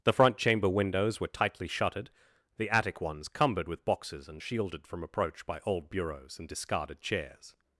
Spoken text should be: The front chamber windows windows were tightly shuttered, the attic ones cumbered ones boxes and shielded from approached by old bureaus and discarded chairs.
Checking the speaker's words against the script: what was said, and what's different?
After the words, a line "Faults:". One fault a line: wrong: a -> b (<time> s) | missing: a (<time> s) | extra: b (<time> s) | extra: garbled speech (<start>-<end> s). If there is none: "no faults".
The front chamber windows were tightly shuttered, the attic ones cumbered with boxes and shielded from approach by old bureaus and discarded chairs.
Faults:
missing: windows (1.2 s)
wrong: ones -> with (3.7 s)
wrong: approached -> approach (5.0 s)